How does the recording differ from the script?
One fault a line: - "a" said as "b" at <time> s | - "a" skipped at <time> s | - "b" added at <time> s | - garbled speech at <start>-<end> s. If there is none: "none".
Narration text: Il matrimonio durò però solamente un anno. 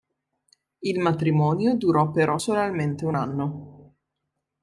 none